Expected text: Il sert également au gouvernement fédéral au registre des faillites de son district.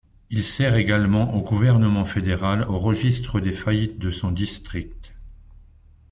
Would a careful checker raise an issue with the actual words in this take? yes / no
no